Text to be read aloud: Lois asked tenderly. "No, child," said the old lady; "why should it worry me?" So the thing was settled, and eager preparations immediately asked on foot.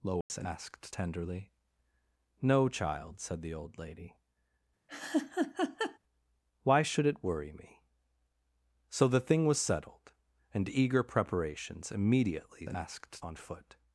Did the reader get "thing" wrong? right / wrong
right